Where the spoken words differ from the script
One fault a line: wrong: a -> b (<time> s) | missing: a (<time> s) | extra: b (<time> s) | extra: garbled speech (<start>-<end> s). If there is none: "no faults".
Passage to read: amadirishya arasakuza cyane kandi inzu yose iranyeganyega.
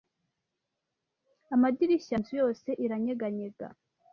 missing: arasakuza cyane kandi (2.1 s)